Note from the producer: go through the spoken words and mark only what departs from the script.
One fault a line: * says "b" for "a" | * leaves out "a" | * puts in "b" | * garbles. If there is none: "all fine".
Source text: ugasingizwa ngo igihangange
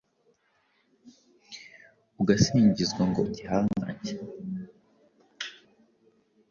all fine